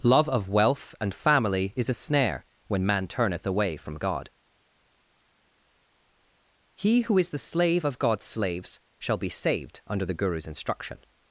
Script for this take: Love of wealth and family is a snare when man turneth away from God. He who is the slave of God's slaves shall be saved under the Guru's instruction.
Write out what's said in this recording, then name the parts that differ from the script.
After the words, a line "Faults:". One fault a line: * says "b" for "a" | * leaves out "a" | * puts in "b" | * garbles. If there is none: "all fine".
Love of wealth and family is a snare when man turneth away from God. He who is the slave of God's slaves shall be saved under the Guru's instruction.
Faults:
all fine